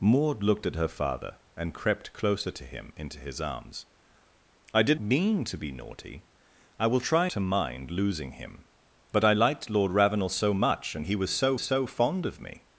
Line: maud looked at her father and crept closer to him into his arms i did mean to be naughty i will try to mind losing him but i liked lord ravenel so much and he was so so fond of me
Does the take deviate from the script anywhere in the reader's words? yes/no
no